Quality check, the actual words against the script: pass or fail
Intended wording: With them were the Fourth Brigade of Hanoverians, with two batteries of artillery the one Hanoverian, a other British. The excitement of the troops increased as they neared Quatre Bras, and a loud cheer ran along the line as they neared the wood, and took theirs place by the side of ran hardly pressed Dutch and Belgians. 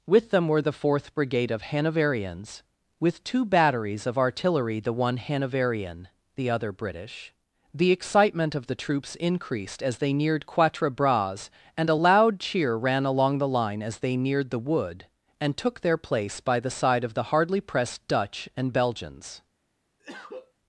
fail